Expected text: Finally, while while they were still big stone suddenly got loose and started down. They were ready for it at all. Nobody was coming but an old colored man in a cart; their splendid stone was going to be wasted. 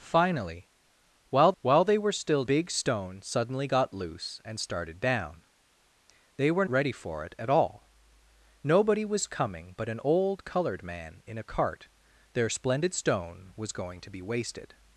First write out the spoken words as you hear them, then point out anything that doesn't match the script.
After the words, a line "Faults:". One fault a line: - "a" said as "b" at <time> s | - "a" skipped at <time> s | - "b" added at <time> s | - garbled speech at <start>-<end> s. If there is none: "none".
Finally, while while they were still big stone suddenly got loose and started down. They were ready for it at all. Nobody was coming but an old colored man in a cart; their splendid stone was going to be wasted.
Faults:
none